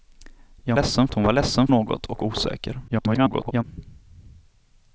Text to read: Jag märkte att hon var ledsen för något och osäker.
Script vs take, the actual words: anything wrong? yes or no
yes